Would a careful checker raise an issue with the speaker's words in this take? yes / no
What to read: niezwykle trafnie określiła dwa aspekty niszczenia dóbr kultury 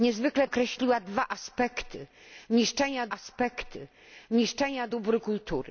yes